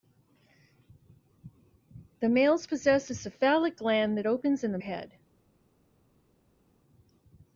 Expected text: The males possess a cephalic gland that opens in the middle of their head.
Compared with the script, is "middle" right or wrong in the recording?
wrong